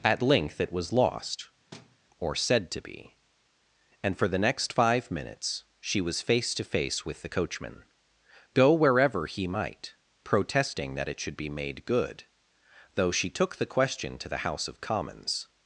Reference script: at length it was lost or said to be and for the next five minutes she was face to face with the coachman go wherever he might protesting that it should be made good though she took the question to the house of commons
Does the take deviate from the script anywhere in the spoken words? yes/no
no